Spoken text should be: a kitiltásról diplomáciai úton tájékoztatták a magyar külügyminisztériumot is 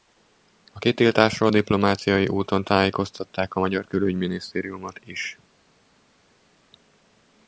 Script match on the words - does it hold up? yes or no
yes